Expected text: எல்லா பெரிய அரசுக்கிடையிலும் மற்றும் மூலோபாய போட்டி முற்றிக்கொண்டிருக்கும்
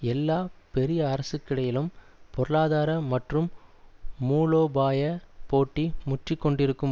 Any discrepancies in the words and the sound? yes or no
yes